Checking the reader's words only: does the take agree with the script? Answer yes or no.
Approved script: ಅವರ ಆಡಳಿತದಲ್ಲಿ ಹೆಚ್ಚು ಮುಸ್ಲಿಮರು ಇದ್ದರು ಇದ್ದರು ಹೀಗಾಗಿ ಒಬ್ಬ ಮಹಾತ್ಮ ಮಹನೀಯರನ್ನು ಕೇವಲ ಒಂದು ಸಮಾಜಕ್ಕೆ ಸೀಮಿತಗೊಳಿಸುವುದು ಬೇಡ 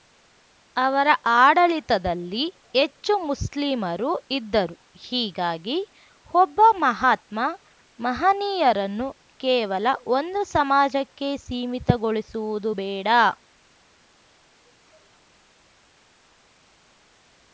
no